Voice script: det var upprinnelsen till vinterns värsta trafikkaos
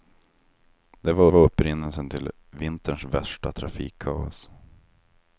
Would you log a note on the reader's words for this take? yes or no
yes